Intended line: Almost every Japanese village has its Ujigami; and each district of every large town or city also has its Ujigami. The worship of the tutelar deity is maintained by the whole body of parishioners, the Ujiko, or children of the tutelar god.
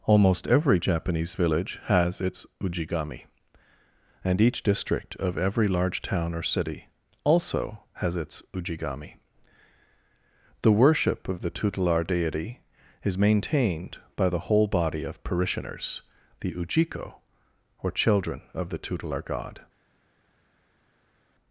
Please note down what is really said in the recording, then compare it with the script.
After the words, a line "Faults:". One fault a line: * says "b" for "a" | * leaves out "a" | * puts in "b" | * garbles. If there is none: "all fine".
Almost every Japanese village has its Ujigami; and each district of every large town or city also has its Ujigami. The worship of the tutelar deity is maintained by the whole body of parishioners, the Ujiko, or children of the tutelar god.
Faults:
all fine